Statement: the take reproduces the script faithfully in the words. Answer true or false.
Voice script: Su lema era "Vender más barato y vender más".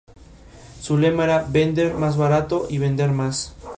true